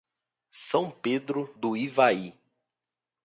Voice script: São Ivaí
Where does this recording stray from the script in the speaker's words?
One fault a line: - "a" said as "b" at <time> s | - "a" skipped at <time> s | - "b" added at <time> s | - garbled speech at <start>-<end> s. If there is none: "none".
- "Pedro do" added at 0.9 s